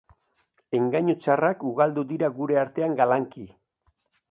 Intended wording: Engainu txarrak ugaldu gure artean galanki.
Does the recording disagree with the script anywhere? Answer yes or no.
yes